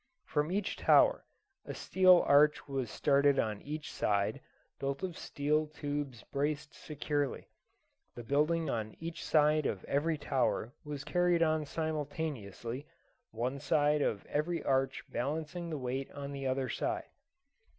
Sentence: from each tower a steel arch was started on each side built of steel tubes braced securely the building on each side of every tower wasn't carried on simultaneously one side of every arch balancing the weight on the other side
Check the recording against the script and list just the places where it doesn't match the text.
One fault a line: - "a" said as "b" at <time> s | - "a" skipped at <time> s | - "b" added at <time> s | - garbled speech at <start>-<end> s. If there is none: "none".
- "wasn't" said as "was" at 10.9 s